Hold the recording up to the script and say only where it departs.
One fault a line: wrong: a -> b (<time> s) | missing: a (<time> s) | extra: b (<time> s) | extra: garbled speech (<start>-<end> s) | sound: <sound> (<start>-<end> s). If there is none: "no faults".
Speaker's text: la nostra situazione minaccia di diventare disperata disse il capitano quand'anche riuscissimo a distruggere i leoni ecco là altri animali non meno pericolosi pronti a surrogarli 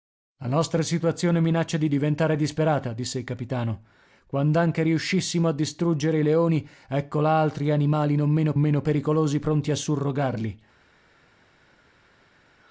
extra: meno (8.6 s)